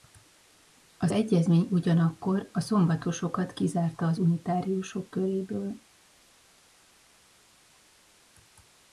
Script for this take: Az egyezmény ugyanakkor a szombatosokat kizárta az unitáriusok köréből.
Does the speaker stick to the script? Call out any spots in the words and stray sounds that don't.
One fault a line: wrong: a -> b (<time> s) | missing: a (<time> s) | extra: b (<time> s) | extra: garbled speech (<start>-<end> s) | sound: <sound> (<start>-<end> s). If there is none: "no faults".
no faults